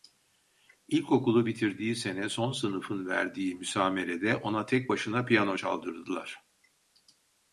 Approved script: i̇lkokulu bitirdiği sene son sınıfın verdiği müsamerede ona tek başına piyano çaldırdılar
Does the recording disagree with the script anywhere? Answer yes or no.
no